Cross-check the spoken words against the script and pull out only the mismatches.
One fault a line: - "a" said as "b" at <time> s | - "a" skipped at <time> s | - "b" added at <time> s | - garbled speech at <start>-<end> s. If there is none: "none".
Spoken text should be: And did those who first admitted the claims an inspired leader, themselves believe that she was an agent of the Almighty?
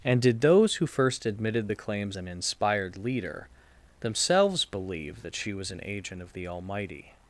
none